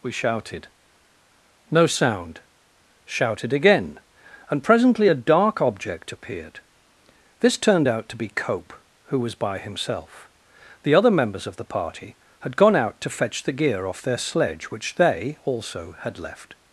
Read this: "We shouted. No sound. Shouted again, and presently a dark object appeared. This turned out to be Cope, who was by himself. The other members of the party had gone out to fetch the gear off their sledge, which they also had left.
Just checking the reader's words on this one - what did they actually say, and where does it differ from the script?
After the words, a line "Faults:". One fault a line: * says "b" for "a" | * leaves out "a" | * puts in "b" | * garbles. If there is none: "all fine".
"We shouted. No sound. Shouted again, and presently a dark object appeared. This turned out to be Cope, who was by himself. The other members of the party had gone out to fetch the gear off their sledge, which they also had left.
Faults:
all fine